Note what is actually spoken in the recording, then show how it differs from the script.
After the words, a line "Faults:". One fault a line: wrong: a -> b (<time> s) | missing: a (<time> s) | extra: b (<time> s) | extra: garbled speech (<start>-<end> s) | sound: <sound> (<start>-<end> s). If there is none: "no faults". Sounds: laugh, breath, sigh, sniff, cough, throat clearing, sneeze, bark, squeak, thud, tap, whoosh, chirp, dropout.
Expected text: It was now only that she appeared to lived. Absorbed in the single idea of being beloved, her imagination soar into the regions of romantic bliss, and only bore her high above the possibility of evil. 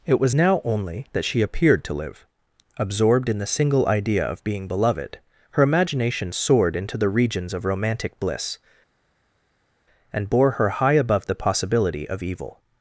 It was now only that she appeared to live. Absorbed in the single idea of being beloved, her imagination soared into the regions of romantic bliss, and bore her high above the possibility of evil.
Faults:
wrong: lived -> live (1.9 s)
wrong: soar -> soared (6.3 s)
missing: only (10.3 s)